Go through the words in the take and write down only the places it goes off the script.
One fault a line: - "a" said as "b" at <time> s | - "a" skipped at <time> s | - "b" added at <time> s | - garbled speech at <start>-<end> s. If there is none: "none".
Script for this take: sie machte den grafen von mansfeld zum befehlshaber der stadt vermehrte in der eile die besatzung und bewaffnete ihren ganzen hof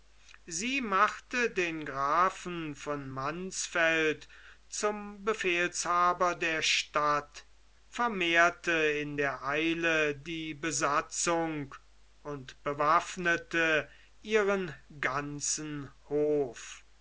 none